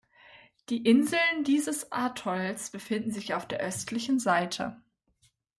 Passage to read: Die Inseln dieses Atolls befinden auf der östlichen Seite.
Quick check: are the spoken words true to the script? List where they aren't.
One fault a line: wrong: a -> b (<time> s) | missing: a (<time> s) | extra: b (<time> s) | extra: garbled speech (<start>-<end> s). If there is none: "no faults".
extra: sich (3.1 s)